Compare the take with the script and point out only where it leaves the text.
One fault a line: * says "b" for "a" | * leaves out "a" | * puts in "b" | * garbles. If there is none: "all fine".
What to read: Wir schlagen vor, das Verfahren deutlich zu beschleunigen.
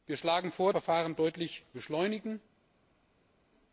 * leaves out "das"
* leaves out "zu"